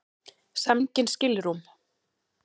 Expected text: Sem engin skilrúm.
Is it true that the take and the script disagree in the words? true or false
false